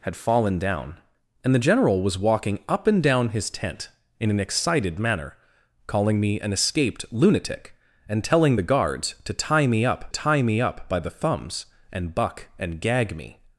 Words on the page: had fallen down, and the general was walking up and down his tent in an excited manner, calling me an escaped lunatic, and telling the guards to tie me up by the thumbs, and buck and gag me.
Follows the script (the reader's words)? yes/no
no